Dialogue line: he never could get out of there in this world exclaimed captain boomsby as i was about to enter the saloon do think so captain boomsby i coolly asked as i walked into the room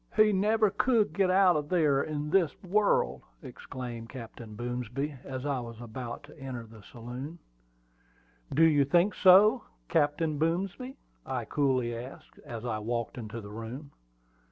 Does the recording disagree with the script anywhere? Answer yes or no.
yes